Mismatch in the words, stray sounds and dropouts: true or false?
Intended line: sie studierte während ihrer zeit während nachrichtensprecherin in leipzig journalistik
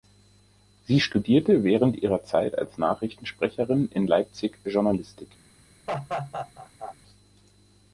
true